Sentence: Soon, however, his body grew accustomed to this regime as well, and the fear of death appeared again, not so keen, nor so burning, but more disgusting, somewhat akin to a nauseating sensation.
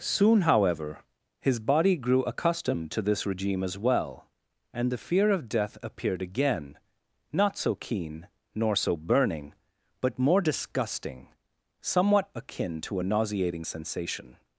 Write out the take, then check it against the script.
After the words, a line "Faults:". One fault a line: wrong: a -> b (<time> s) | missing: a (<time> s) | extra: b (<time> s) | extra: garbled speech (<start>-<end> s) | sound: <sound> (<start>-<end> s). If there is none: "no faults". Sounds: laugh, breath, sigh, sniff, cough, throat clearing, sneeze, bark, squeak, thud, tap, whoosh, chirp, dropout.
Soon, however, his body grew accustomed to this regime as well, and the fear of death appeared again, not so keen, nor so burning, but more disgusting, somewhat akin to a nauseating sensation.
Faults:
no faults